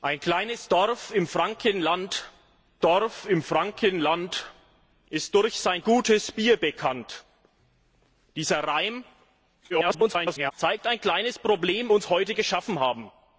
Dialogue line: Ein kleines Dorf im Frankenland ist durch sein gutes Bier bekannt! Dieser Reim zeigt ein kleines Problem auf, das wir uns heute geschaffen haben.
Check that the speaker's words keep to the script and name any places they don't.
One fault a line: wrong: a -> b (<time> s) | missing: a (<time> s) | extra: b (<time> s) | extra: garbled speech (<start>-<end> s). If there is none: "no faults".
extra: Dorf im Frankenland (2.8 s)
extra: garbled speech (9.7-10.5 s)
missing: auf das wir (11.9 s)